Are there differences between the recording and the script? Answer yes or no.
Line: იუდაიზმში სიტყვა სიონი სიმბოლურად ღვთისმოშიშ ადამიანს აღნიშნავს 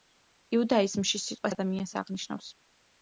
yes